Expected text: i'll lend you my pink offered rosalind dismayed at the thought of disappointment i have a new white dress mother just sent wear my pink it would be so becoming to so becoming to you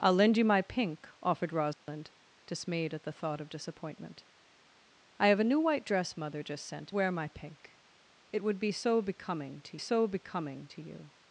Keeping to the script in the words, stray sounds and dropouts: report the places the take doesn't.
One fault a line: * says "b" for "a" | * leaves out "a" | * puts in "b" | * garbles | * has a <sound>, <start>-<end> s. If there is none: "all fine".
* has a dropout, 1.7-1.9 s